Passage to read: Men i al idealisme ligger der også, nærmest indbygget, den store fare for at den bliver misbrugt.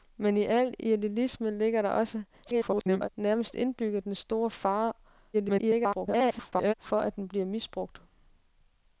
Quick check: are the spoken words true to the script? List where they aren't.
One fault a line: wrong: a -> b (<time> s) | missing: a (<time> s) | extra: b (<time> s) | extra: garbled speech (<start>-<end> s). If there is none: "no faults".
extra: garbled speech (2.4-3.1 s)
extra: garbled speech (5.3-6.7 s)